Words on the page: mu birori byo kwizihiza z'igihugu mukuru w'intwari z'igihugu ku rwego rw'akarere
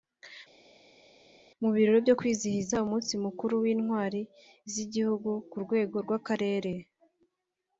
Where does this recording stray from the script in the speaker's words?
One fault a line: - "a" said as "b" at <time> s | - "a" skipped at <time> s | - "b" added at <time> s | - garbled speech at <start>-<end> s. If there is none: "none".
- "z'igihugu" said as "umunsi" at 2.8 s